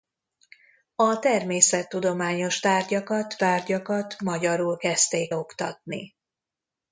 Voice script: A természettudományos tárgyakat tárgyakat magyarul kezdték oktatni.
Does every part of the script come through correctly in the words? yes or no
yes